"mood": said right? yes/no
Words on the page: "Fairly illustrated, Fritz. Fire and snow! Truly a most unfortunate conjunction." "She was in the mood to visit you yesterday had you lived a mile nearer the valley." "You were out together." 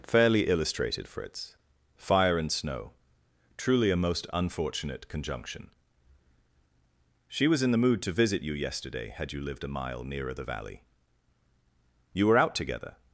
yes